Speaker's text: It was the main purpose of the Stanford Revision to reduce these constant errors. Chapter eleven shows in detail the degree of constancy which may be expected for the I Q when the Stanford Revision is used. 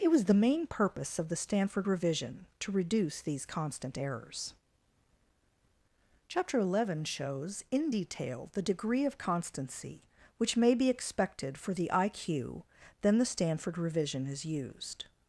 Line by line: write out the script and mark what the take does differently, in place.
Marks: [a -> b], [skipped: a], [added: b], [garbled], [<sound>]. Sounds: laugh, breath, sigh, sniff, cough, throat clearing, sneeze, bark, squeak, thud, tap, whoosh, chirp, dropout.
It was the main purpose of the Stanford Revision to reduce these constant errors. Chapter eleven shows in detail the degree of constancy which may be expected for the I Q [when -> then] the Stanford Revision is used.